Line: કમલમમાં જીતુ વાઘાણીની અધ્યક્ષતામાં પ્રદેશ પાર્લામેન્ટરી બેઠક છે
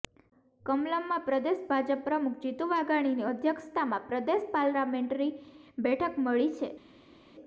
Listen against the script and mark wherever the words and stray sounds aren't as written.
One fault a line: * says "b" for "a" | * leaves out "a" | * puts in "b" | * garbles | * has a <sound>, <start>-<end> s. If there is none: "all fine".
* puts in "પ્રદેશ ભાજપ પ્રમુખ"
* puts in "મળી"